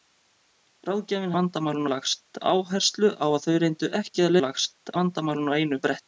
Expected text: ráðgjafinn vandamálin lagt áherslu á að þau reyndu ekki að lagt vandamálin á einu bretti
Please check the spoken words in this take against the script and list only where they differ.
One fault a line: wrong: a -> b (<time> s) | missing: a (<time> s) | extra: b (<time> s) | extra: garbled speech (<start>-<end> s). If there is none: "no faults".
no faults